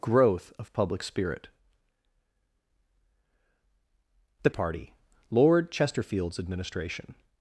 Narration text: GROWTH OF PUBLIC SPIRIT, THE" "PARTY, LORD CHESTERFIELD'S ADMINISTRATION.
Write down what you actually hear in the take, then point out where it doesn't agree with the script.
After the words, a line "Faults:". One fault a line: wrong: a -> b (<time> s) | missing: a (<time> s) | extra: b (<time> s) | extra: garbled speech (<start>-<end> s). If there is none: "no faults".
GROWTH OF PUBLIC SPIRIT, THE" "PARTY, LORD CHESTERFIELD'S ADMINISTRATION.
Faults:
no faults